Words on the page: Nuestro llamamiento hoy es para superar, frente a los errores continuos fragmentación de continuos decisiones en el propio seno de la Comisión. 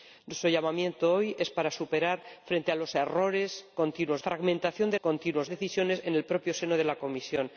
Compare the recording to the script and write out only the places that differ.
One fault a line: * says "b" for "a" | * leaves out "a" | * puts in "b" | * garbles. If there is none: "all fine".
all fine